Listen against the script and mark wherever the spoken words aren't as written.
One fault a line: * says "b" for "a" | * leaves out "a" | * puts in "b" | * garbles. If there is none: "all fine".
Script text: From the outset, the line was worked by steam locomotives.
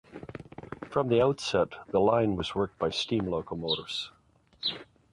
all fine